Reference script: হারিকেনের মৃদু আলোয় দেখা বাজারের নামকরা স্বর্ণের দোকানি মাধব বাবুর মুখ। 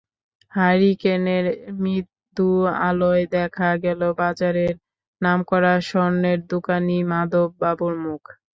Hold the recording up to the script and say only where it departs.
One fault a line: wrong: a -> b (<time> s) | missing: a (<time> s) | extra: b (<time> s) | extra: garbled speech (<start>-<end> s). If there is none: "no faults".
extra: গেল (3.8 s)